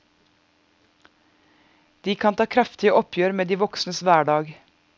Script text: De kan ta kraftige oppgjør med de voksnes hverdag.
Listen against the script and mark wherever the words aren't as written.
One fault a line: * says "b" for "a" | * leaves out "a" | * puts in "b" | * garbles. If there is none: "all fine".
all fine